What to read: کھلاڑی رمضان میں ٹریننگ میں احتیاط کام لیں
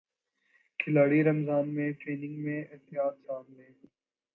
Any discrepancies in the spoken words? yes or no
no